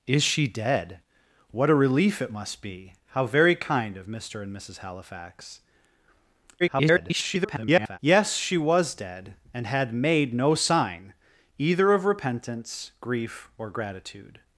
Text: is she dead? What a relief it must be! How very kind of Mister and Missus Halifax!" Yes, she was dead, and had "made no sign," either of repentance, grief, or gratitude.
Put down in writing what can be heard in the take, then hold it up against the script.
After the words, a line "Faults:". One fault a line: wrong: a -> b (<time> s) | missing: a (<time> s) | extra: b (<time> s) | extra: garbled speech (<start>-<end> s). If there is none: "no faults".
is she dead? What a relief it must be! How very kind of Mister and Missus Halifax!" [garbled] Yes, she was dead, and had "made no sign," either of repentance, grief, or gratitude.
Faults:
extra: garbled speech (6.6-8.0 s)